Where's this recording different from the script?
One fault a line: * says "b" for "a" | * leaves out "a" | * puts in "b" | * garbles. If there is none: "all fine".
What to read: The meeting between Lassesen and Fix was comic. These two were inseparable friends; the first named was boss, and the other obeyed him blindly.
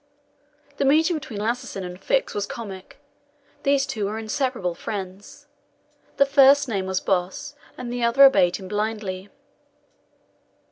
all fine